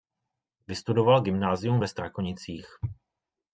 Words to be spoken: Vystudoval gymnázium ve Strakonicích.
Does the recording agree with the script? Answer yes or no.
yes